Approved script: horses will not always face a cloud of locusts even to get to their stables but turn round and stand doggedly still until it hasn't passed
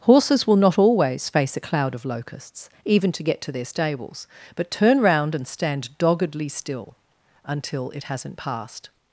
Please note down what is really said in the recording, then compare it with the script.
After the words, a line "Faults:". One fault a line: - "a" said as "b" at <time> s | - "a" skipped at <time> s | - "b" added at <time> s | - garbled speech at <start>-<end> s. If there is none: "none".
horses will not always face a cloud of locusts even to get to their stables but turn round and stand doggedly still until it hasn't passed
Faults:
none